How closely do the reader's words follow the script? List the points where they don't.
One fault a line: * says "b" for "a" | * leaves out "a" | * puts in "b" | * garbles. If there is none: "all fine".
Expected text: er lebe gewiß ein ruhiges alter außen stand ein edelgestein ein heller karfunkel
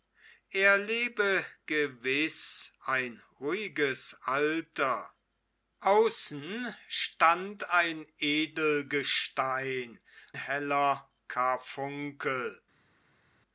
* leaves out "ein"